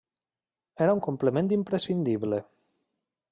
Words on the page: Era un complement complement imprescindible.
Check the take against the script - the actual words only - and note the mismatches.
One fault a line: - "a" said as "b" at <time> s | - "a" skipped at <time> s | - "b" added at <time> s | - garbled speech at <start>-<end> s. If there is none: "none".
- "complement" skipped at 1.5 s